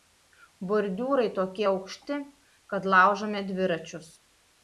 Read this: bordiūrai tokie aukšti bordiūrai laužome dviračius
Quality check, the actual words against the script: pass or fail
fail